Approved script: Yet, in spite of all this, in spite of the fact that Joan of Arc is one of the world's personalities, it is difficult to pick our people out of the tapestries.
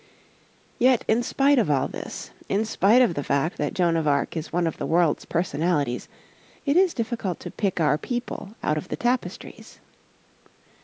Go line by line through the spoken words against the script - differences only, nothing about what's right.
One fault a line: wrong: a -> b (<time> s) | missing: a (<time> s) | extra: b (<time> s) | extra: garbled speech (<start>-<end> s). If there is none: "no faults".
no faults